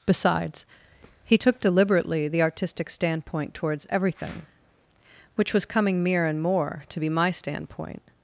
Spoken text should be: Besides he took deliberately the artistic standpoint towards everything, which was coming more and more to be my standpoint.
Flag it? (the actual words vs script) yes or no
yes